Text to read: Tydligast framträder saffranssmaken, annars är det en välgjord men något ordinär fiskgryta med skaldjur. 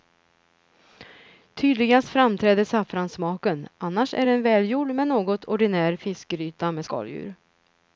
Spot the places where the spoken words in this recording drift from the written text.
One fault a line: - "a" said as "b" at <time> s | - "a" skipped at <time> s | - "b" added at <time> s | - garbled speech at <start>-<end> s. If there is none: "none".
none